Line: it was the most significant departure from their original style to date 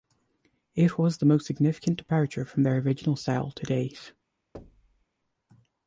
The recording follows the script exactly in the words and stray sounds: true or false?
false